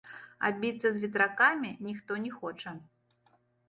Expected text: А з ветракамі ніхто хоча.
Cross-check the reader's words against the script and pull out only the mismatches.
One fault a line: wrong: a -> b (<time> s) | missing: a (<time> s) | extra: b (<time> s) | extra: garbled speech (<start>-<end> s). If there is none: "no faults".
extra: біцца (0.6 s)
extra: не (2.2 s)